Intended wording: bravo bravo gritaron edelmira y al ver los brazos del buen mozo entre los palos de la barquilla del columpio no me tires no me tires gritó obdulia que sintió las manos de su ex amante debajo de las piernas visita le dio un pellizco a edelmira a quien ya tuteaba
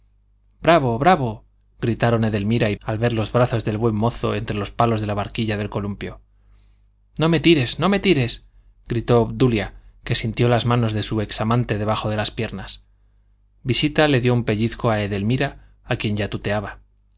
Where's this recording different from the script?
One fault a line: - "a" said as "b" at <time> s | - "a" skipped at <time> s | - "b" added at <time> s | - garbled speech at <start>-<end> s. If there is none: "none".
none